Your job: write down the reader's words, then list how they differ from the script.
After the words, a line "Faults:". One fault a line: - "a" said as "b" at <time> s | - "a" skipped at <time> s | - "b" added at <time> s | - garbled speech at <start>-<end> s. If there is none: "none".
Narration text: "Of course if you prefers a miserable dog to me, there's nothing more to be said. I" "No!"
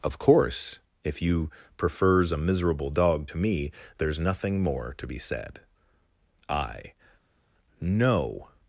"Of course if you prefers a miserable dog to me, there's nothing more to be said. I" "No!"
Faults:
none